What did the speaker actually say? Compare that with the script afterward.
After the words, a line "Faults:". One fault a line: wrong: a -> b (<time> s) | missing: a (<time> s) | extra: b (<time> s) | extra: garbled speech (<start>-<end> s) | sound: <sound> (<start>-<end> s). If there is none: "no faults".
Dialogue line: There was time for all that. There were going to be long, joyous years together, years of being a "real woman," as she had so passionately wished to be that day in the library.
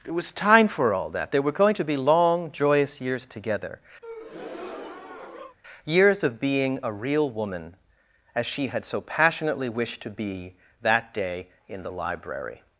It was time for all that. There were going to be long, joyous years together, years of being a "real woman," as she had so passionately wished to be that day in the library.
Faults:
wrong: There -> It (0.1 s)
sound: breath (4.0-5.6 s)